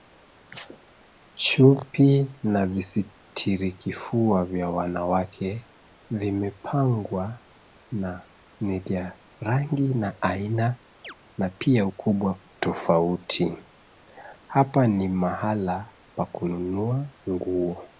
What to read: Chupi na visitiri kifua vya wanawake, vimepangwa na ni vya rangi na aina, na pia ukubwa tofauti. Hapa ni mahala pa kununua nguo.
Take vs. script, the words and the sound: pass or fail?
fail